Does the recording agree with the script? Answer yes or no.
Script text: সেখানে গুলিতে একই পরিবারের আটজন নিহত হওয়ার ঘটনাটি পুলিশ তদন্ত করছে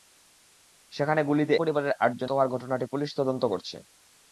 no